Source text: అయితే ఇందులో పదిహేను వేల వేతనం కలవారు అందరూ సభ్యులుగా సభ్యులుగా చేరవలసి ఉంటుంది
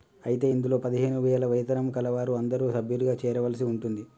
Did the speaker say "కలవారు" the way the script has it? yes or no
yes